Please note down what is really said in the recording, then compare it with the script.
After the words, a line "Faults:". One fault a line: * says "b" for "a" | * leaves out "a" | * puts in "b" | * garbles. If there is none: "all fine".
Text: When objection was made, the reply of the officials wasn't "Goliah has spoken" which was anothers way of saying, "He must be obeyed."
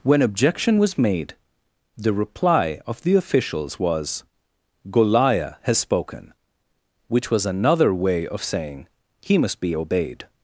When objection was made, the reply of the officials was "Goliah has spoken" which was another way of saying, "He must be obeyed."
Faults:
* says "was" for "wasn't"
* says "another" for "anothers"